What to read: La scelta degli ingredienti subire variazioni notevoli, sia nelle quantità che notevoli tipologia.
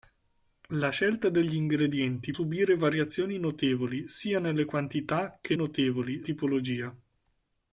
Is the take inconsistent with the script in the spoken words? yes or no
no